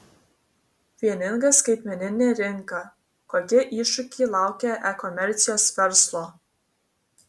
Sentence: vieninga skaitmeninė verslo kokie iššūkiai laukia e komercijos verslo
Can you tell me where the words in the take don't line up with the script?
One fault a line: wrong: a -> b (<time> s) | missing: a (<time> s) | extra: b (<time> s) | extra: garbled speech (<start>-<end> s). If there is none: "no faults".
wrong: verslo -> rinka (2.4 s)